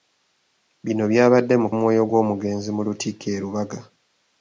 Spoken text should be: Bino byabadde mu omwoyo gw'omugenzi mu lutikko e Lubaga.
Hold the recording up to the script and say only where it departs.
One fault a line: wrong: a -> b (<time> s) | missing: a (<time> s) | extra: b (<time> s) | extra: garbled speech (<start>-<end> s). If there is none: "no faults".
no faults